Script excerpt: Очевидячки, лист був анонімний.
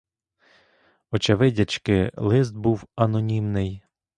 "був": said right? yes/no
yes